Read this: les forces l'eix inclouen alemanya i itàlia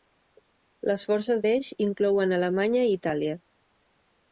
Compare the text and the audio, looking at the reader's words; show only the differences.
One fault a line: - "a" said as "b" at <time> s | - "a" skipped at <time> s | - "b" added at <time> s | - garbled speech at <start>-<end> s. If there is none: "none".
none